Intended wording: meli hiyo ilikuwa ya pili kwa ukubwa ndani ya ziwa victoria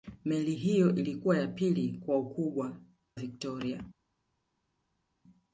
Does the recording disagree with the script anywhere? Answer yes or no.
yes